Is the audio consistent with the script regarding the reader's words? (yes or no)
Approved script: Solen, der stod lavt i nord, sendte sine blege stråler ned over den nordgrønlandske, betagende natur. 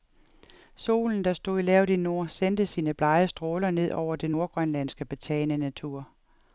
yes